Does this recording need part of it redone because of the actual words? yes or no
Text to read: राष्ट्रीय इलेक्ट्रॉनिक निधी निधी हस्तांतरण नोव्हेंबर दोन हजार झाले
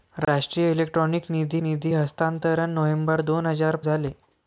no